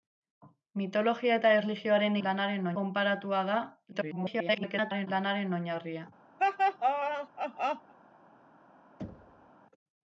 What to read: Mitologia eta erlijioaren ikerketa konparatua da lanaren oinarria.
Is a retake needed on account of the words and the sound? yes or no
yes